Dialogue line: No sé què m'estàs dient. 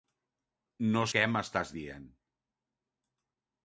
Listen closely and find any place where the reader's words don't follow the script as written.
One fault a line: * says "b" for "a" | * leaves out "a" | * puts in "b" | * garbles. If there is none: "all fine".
* leaves out "sé"